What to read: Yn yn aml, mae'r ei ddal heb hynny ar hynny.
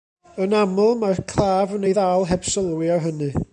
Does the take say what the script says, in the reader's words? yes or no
no